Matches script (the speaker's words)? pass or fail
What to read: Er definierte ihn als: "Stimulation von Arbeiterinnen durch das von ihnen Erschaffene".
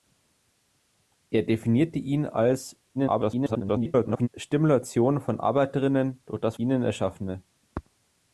fail